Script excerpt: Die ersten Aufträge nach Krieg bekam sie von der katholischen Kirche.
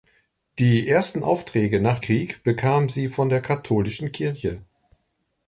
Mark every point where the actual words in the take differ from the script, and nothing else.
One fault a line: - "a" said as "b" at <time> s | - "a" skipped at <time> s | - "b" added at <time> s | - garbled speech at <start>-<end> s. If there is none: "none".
none